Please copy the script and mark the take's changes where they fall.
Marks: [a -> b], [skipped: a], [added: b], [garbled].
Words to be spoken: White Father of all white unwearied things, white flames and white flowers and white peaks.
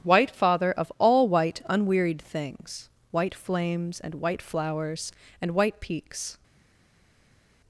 White Father of all white unwearied things, white flames and white flowers and white peaks.